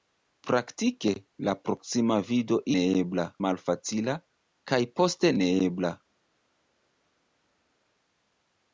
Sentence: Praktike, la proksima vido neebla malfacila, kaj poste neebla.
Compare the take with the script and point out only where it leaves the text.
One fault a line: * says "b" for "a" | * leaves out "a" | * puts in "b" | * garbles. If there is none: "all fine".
all fine